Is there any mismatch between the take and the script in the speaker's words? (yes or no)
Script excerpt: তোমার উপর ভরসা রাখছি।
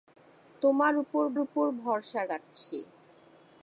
yes